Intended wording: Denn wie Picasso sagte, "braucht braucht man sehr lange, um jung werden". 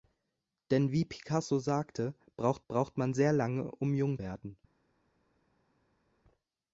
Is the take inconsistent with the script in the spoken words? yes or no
no